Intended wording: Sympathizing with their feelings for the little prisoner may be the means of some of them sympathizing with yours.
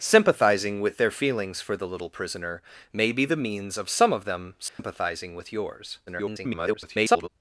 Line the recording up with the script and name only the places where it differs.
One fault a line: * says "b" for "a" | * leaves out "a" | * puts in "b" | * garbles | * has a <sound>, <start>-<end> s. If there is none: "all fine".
* has a dropout, 4.7-4.8 s
* garbles